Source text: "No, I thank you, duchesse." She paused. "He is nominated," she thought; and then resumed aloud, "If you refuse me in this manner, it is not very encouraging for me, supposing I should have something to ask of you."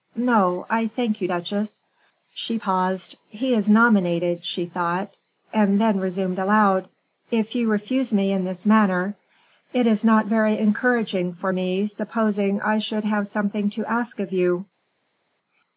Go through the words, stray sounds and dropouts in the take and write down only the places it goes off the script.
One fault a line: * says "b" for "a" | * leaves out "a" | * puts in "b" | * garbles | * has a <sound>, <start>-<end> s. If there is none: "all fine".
all fine